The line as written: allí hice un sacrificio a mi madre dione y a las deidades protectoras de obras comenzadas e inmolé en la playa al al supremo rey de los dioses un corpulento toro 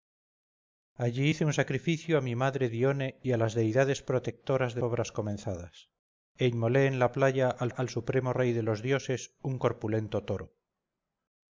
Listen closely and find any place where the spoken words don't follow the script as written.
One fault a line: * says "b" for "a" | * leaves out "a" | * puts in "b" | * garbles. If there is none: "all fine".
all fine